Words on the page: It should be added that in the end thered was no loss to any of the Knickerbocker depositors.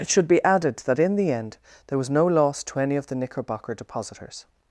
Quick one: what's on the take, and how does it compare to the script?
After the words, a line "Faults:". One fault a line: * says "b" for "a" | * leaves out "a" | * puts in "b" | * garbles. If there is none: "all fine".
It should be added that in the end there was no loss to any of the Knickerbocker depositors.
Faults:
* says "there" for "thered"